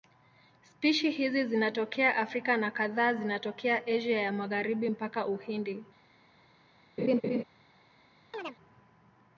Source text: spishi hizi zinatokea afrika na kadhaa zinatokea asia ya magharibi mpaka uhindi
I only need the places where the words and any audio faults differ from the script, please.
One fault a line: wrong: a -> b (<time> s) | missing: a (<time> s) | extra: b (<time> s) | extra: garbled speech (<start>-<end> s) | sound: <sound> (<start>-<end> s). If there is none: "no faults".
sound: laugh (7.0-7.4 s)
sound: chirp (8.3-8.6 s)